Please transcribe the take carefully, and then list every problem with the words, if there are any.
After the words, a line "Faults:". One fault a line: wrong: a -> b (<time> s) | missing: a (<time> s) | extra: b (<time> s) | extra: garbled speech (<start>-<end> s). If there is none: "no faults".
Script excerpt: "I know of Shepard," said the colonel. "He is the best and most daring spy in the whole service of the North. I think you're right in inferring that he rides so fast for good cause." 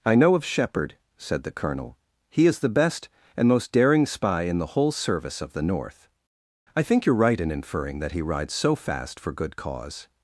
"I know of Shepard," said the colonel. "He is the best and most daring spy in the whole service of the North. I think you're right in inferring that he rides so fast for good cause."
Faults:
no faults